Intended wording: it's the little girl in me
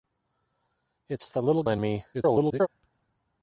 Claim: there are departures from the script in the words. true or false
true